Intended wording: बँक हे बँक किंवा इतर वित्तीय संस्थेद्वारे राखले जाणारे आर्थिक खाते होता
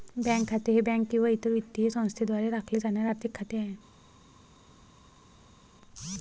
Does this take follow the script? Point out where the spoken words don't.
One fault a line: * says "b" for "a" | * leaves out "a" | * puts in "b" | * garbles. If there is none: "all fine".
* puts in "खाते"
* says "आहे" for "होता"